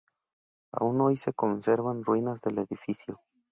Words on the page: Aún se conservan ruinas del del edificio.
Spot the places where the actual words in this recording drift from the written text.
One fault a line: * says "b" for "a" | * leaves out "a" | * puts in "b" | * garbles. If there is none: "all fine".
* puts in "hoy"
* leaves out "del"